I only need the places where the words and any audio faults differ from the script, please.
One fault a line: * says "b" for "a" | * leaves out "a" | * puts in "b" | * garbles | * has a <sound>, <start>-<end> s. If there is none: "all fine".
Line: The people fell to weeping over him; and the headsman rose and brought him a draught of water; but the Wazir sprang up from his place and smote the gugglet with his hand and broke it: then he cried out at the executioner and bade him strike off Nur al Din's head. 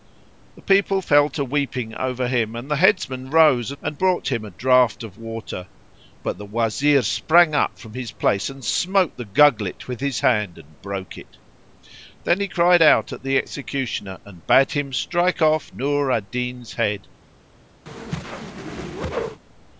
* has a whoosh, 17.9-19.4 s